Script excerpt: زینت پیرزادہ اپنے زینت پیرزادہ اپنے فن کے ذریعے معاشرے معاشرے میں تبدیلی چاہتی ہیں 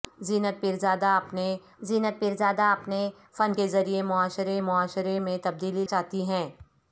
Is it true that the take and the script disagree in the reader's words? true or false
false